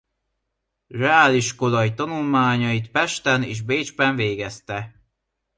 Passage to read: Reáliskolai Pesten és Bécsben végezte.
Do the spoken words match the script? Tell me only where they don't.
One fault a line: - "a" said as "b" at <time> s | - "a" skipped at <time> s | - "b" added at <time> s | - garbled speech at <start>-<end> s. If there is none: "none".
- "tanulmányait" added at 1.9 s